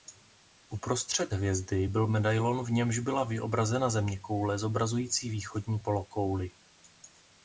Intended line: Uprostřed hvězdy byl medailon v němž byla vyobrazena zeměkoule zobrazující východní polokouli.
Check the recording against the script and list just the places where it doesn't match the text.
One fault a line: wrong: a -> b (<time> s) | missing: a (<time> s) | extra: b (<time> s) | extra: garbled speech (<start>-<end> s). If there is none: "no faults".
no faults